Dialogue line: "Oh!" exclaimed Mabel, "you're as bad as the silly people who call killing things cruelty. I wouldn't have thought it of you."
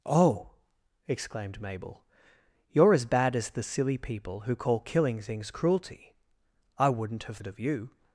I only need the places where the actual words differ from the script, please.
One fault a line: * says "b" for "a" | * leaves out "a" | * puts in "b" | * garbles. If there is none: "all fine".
* leaves out "thought"